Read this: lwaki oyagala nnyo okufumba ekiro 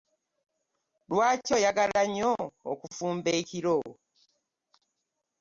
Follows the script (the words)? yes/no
yes